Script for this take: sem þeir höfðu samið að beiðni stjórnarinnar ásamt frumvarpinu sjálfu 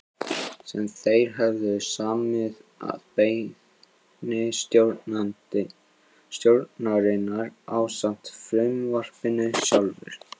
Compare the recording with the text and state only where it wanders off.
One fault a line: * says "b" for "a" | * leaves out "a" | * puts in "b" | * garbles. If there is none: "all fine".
all fine